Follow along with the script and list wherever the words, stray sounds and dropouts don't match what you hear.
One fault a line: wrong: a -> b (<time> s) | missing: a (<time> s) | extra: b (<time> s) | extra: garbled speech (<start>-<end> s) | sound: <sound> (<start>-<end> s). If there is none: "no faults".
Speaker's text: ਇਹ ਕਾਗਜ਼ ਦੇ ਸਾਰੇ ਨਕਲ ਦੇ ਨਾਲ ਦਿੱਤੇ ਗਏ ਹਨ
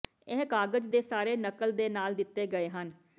no faults